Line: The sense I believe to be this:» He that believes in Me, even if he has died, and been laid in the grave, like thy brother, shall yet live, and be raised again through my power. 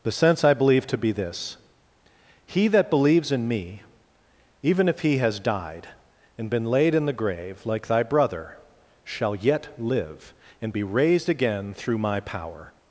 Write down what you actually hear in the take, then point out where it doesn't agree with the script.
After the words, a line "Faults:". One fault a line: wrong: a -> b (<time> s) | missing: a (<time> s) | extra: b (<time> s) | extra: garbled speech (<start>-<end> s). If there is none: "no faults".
The sense I believe to be this:» He that believes in Me, even if he has died, and been laid in the grave, like thy brother, shall yet live, and be raised again through my power.
Faults:
no faults